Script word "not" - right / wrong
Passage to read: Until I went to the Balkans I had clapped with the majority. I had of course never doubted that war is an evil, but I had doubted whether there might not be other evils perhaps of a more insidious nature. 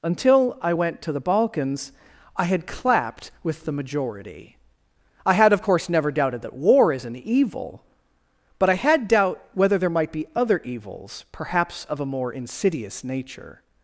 wrong